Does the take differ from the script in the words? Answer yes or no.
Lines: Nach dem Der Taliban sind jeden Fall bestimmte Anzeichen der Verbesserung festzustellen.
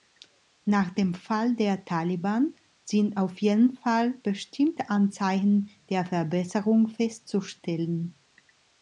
yes